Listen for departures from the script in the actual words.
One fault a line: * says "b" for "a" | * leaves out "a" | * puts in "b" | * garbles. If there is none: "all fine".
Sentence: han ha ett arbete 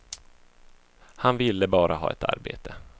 * puts in "ville bara"